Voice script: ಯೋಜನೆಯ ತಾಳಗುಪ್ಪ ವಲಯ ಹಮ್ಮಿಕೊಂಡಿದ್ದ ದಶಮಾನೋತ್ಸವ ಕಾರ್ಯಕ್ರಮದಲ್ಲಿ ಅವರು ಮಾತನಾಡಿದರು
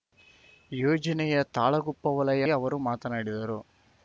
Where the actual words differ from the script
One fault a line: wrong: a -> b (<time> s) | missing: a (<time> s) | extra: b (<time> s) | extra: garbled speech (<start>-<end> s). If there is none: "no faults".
missing: ಹಮ್ಮಿಕೊಂಡಿದ್ದ ದಶಮಾನೋತ್ಸವ ಕಾರ್ಯಕ್ರಮದಲ್ಲಿ (2.5 s)